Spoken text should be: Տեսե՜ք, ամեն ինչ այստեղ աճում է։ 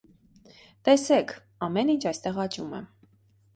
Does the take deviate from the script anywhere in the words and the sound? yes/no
no